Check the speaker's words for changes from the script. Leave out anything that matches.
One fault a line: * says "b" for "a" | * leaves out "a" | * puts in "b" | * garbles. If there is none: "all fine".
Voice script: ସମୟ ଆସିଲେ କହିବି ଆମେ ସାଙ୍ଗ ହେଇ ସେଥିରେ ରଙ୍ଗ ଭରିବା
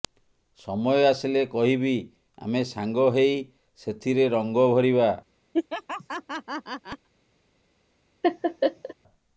all fine